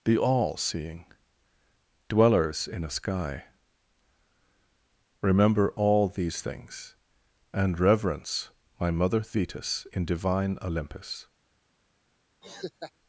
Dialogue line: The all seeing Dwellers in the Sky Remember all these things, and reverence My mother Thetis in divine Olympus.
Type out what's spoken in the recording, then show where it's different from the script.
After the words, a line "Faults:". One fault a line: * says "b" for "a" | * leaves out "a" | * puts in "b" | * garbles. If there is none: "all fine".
The all seeing Dwellers in a Sky Remember all these things, and reverence My mother Thetis in divine Olympus.
Faults:
* says "a" for "the"